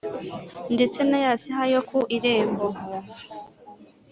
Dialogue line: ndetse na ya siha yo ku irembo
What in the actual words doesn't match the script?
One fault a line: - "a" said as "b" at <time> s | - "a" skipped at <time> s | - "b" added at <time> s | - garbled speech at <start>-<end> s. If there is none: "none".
none